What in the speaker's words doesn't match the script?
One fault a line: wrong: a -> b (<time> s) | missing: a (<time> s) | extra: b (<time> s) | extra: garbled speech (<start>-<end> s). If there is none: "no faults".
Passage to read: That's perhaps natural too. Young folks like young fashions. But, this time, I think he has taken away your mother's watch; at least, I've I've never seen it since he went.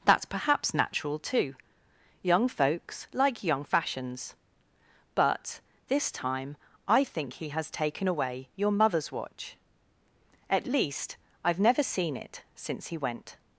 missing: I've (11.6 s)